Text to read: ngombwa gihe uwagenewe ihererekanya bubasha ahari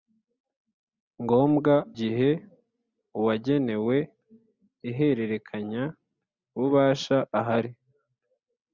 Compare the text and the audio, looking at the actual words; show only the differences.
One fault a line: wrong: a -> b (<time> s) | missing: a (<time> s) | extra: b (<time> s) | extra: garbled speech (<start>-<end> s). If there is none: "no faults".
no faults